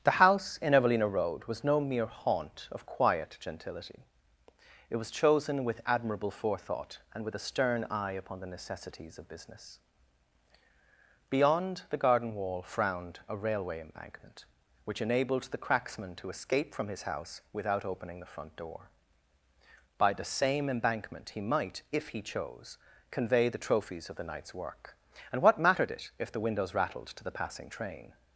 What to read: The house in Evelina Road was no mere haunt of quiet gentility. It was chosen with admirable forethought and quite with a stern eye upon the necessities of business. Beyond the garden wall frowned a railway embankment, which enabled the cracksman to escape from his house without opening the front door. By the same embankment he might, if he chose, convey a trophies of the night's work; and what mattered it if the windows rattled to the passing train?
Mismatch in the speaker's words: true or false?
true